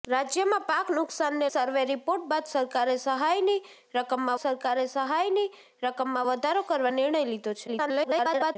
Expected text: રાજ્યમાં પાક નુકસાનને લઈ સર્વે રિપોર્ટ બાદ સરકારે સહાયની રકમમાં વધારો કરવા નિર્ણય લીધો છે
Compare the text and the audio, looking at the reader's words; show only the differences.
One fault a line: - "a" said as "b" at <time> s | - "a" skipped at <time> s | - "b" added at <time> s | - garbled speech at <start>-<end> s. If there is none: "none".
- "લઈ" skipped at 1.5 s
- "સરકારે સહાયની રકમમાં" added at 4.4 s
- garbled speech at 7.7-8.6 s